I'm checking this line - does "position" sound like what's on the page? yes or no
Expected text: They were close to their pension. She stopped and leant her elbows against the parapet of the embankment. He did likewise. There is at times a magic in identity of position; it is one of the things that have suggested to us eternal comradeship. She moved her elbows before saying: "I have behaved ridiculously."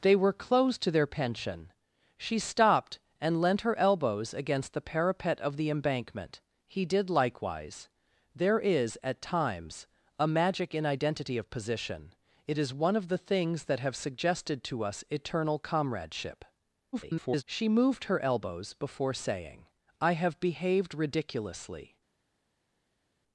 yes